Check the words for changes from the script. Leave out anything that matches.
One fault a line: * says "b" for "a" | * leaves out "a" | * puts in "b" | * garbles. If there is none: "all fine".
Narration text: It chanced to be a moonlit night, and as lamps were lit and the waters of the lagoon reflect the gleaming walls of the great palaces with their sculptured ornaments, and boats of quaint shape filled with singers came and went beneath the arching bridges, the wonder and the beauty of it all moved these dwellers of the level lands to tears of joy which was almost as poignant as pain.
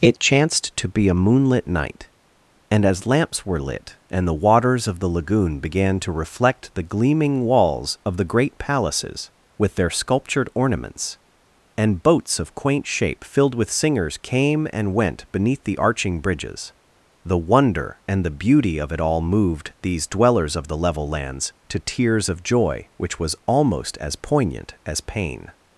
* puts in "began to"